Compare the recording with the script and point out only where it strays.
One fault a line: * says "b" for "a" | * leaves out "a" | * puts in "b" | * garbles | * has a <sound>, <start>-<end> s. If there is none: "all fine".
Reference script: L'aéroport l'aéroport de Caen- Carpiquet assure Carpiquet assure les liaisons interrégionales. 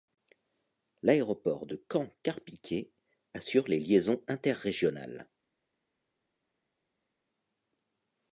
* leaves out "l'aéroport"
* leaves out "Carpiquet assure"